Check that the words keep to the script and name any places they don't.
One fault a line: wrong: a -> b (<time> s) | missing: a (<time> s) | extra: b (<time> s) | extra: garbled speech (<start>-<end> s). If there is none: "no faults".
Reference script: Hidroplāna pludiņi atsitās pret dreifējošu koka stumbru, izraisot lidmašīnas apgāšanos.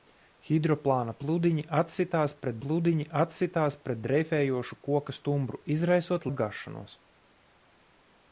extra: pludiņi atsitās pret (2.6 s)
missing: lidmašīnas (6.3 s)